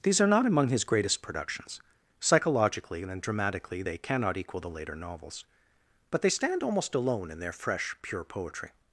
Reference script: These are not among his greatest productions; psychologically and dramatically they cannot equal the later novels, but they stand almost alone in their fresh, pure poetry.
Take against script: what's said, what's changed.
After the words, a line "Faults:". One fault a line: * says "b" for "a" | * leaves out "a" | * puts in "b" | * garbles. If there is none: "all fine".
These are not among his greatest productions; psychologically and dramatically they cannot equal the later novels, but they stand almost alone in their fresh, pure poetry.
Faults:
all fine